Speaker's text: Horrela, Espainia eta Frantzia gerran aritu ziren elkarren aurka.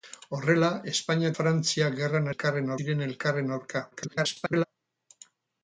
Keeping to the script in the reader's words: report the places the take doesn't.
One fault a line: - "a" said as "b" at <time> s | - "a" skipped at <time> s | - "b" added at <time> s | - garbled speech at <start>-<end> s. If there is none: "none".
- "eta" skipped at 1.3 s
- "aritu" said as "elkarren" at 2.3 s
- garbled speech at 3.9-4.6 s